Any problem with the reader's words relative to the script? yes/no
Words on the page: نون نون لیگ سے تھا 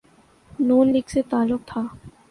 yes